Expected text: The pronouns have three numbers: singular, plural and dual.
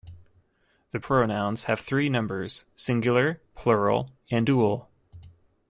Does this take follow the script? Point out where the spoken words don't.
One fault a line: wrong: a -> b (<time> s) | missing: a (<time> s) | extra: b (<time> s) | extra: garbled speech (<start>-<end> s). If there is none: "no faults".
no faults